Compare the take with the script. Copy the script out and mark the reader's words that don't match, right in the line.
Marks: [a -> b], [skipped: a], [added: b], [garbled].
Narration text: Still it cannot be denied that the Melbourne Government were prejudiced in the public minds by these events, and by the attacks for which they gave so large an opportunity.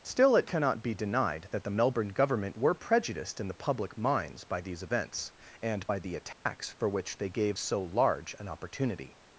Still it cannot be denied that the Melbourne Government were prejudiced in the public minds by these events, and by the attacks for which they gave so large an opportunity.